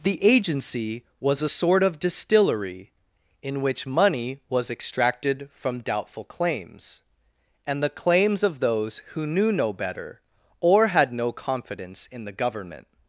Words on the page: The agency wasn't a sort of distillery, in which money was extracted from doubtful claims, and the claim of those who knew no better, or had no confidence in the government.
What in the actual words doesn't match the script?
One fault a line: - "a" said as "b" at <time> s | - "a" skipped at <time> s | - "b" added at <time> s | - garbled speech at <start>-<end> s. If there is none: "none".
- "wasn't" said as "was" at 1.2 s
- "claim" said as "claims" at 7.9 s